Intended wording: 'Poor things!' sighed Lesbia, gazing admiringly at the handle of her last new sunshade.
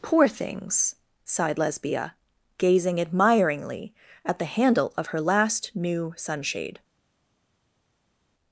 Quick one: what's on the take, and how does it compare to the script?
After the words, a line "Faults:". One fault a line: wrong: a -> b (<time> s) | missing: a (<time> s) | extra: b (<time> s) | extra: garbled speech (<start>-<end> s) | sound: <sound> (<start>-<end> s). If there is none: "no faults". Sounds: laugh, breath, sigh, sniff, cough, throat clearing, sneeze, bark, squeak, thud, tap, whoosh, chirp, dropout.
'Poor things!' sighed Lesbia, gazing admiringly at the handle of her last new sunshade.
Faults:
no faults